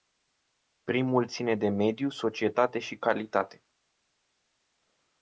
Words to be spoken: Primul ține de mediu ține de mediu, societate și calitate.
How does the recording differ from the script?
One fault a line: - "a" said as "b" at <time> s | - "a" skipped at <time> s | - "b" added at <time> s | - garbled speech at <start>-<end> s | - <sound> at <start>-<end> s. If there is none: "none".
- "ține de mediu" skipped at 2.1 s